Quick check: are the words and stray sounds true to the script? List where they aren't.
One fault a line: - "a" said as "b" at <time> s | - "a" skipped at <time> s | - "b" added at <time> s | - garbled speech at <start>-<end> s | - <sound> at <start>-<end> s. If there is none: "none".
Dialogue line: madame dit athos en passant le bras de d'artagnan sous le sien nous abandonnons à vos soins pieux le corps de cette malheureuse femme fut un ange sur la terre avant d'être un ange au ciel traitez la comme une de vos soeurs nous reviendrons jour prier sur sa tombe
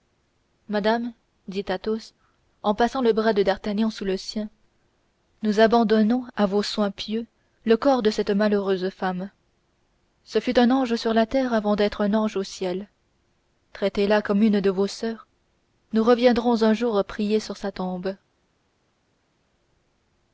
- "ce" added at 10.2 s
- "un" added at 16.6 s